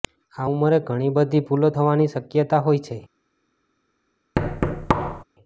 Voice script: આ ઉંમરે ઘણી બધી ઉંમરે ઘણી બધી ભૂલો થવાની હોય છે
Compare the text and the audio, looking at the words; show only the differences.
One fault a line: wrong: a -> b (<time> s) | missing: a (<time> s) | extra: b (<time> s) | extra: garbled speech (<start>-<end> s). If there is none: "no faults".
missing: ઉંમરે ઘણી બધી (1.4 s)
extra: શક્યતા (2.1 s)